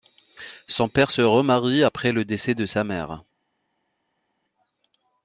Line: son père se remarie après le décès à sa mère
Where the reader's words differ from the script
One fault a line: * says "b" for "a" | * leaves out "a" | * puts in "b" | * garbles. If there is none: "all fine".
* says "de" for "à"